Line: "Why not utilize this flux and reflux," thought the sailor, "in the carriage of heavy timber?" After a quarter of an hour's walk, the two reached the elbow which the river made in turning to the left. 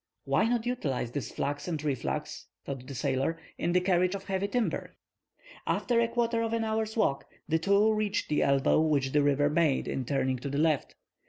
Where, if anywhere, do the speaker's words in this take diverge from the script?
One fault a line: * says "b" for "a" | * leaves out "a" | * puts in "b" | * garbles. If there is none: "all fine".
all fine